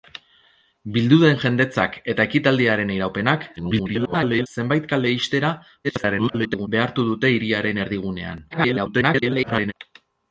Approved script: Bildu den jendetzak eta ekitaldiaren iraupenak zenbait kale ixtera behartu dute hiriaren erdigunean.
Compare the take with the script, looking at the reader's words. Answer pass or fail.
fail